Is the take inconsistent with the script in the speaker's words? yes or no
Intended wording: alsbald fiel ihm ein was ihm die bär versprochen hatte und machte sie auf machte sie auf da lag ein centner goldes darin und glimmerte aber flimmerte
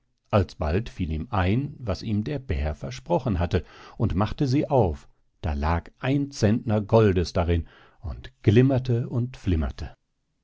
yes